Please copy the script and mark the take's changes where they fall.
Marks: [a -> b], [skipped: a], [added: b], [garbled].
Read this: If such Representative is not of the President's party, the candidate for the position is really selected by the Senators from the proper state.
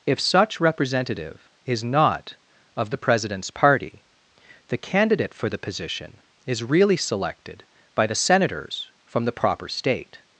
If such Representative is not of the President's party, the candidate for the position is really selected by the Senators from the proper state.